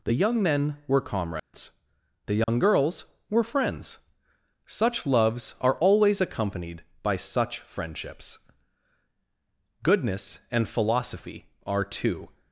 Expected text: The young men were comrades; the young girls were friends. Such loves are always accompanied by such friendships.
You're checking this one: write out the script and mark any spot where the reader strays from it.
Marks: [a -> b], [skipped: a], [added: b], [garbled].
The young men were comrades; the young girls were friends. Such loves are always accompanied by such friendships. [added: Goodness and philosophy are two]